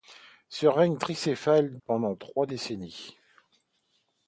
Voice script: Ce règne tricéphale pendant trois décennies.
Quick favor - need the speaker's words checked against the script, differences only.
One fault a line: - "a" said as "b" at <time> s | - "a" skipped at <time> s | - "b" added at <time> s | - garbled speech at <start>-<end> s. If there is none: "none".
none